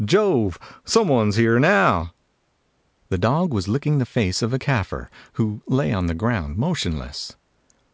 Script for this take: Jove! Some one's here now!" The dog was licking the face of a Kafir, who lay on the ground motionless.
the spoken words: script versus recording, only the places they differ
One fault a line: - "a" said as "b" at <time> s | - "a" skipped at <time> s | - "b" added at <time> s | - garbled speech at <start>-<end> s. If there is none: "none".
none